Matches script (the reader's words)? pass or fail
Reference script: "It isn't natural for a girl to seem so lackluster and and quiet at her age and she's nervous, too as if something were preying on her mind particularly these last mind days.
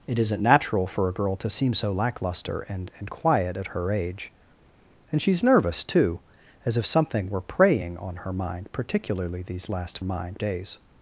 pass